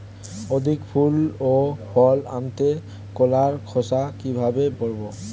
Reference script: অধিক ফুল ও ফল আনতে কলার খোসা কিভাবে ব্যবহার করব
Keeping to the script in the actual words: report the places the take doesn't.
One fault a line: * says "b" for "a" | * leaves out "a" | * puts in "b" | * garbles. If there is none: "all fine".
* leaves out "ব্যবহার"